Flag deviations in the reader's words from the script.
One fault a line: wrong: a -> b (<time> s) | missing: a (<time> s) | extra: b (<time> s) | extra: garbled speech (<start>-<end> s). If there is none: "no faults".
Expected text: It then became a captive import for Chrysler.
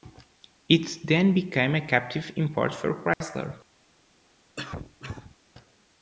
no faults